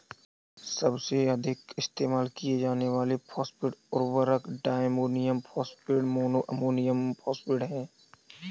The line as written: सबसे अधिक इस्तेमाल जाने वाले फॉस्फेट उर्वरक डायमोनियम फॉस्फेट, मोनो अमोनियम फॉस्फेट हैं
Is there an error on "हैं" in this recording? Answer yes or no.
no